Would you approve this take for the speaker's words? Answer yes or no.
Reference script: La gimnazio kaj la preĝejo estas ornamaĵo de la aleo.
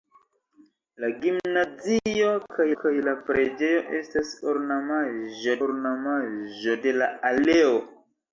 no